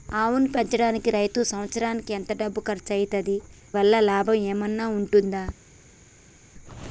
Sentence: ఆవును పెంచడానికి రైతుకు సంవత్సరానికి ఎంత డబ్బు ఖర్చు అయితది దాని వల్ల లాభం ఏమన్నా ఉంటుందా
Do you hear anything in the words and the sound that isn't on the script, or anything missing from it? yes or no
yes